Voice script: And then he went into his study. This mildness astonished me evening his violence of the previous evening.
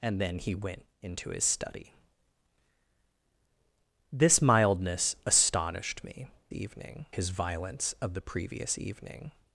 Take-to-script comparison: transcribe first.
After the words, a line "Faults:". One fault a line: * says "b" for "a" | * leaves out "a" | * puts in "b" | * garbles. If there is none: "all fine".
And then he went into his study. This mildness astonished me evening his violence of the previous evening.
Faults:
all fine